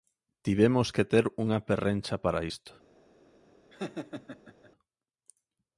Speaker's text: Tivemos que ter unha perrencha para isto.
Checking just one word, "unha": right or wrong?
right